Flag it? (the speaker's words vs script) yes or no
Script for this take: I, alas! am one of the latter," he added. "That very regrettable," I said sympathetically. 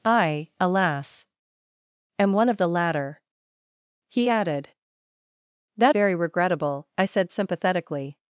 no